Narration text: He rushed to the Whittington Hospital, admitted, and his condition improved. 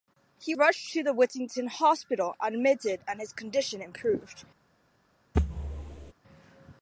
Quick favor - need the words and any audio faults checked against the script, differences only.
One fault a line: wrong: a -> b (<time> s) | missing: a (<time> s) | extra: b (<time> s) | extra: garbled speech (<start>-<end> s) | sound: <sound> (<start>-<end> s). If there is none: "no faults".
sound: thud (5.3-6.1 s)